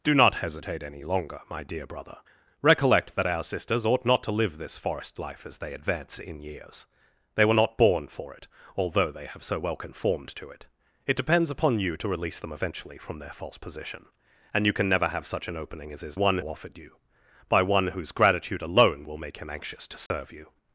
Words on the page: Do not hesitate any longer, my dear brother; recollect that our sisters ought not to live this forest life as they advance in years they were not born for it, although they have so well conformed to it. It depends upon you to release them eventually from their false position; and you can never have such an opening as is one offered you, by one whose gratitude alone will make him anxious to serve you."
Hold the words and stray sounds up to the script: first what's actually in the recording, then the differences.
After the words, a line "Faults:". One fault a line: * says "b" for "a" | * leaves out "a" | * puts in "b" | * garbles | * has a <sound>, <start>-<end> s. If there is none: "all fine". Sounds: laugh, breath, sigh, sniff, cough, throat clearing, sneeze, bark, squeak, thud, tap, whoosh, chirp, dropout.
Do not hesitate any longer, my dear brother; recollect that our sisters ought not to live this forest life as they advance in years they were not born for it, although they have so well conformed to it. It depends upon you to release them eventually from their false position; and you can never have such an opening as is one offered you, by one whose gratitude alone will make him anxious to serve you."
Faults:
* has a dropout, 20.1-20.1 s